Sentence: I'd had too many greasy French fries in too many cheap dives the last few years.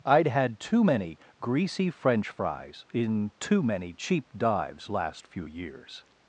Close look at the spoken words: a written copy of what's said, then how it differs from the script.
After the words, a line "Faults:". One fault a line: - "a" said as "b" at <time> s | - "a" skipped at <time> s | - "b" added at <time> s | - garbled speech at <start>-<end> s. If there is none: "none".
I'd had too many greasy French fries in too many cheap dives last few years.
Faults:
- "the" skipped at 4.9 s